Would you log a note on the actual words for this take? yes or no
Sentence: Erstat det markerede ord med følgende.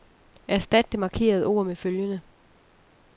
no